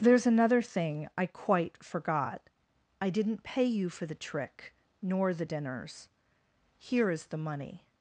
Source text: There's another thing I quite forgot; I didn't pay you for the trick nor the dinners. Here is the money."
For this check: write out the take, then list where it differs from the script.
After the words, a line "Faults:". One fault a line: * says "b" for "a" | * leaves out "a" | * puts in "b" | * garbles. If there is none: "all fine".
There's another thing I quite forgot; I didn't pay you for the trick nor the dinners. Here is the money."
Faults:
all fine